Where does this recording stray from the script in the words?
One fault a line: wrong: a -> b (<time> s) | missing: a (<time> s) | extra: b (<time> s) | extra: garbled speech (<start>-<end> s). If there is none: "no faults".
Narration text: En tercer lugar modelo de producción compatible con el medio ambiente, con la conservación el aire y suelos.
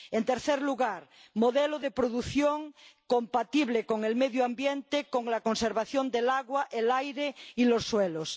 extra: del agua (6.1 s)
extra: los (7.7 s)